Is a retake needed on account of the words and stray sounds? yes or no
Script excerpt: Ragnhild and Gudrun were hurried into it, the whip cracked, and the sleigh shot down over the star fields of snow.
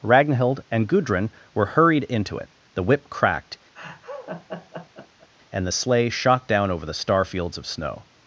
yes